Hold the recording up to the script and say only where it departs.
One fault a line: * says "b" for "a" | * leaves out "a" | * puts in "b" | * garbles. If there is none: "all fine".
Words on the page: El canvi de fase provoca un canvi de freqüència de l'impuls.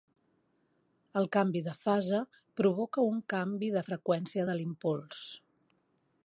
all fine